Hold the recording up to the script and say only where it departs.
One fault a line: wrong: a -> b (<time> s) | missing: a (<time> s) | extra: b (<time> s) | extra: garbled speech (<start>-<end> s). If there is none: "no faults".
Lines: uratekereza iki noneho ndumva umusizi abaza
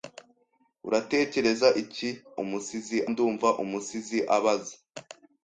wrong: noneho -> umusizi (2.4 s)